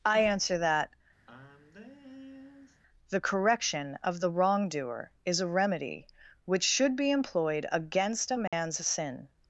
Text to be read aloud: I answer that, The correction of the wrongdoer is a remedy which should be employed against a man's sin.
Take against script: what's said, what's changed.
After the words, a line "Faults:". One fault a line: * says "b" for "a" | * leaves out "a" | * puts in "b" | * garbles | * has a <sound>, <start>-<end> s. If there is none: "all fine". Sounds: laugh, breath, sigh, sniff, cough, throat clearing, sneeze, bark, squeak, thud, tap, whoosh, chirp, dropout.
I answer that, The correction of the wrongdoer is a remedy which should be employed against a man's sin.
Faults:
* has a sigh, 1.3-2.8 s
* has a dropout, 8.5-8.5 s